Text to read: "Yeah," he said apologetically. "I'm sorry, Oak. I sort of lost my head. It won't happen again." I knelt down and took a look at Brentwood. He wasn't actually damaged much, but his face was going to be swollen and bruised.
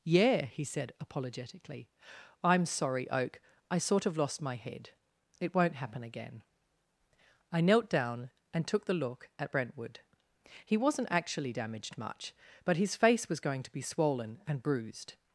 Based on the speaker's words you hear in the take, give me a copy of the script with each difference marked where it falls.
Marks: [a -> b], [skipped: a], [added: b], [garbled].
"Yeah," he said apologetically. "I'm sorry, Oak. I sort of lost my head. It won't happen again." I knelt down and took [a -> the] look at Brentwood. He wasn't actually damaged much, but his face was going to be swollen and bruised.